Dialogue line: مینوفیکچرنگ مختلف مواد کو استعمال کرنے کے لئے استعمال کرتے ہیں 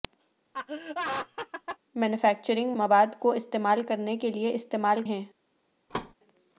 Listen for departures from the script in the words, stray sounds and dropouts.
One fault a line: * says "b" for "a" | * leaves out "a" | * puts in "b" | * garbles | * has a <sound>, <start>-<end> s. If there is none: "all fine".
* has a laugh, 0.5-1.8 s
* leaves out "مختلف"
* leaves out "کرتے"
* has a thud, 5.9-6.1 s